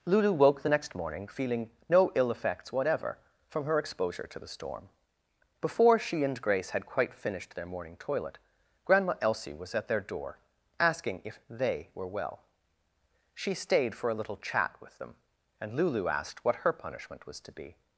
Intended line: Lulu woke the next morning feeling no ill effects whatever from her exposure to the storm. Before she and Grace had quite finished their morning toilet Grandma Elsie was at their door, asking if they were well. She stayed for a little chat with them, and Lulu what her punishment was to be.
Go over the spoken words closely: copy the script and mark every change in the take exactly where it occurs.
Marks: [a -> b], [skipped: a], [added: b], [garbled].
Lulu woke the next morning feeling no ill effects whatever from her exposure to the storm. Before she and Grace had quite finished their morning toilet Grandma Elsie was at their door, asking if they were well. She stayed for a little chat with them, and Lulu [added: asked] what her punishment was to be.